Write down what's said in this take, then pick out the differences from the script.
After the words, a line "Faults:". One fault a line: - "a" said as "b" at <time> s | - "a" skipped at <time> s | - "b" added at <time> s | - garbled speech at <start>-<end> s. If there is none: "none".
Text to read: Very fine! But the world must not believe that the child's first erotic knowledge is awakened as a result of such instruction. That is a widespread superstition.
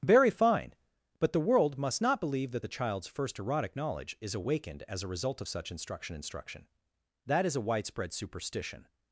Very fine! But the world must not believe that the child's first erotic knowledge is awakened as a result of such instruction instruction. That is a widespread superstition.
Faults:
- "instruction" added at 6.1 s